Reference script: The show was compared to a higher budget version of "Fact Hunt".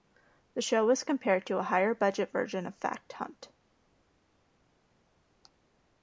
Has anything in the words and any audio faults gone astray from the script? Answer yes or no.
no